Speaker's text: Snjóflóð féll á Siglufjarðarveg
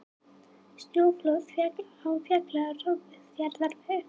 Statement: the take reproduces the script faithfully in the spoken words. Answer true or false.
true